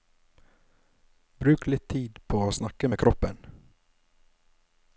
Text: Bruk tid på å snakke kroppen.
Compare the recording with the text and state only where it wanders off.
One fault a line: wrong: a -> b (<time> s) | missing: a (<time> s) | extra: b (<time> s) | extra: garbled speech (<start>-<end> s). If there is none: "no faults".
extra: litt (1.7 s)
extra: med (2.9 s)